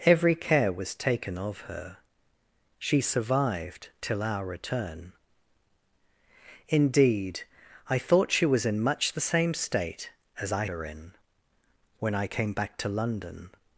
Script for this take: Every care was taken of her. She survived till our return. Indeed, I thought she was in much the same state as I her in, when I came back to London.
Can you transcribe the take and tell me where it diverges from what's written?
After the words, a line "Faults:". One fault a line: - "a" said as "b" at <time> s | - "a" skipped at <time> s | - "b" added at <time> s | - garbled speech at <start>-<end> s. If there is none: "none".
Every care was taken of her. She survived till our return. Indeed, I thought she was in much the same state as I her in, when I came back to London.
Faults:
none